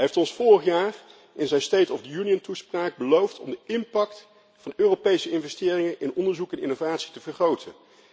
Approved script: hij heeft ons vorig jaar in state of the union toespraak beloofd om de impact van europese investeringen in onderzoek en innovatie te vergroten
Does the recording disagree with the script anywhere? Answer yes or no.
yes